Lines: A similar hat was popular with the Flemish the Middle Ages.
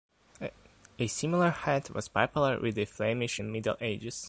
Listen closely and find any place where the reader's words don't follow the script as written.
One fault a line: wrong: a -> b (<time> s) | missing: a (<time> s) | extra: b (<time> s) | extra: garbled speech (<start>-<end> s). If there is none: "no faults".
no faults